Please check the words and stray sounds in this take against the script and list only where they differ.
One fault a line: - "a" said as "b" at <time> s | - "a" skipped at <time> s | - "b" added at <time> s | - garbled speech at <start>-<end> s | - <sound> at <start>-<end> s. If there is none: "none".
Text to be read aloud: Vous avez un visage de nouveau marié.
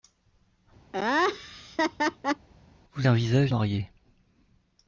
- laugh at 0.9-2.5 s
- "avez" skipped at 3.1 s
- "de nouveau" skipped at 3.5 s